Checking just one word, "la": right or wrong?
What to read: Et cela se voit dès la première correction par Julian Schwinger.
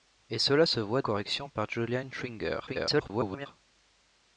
wrong